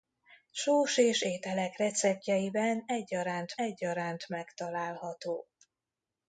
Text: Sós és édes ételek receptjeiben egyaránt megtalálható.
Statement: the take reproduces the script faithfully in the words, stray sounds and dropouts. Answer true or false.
false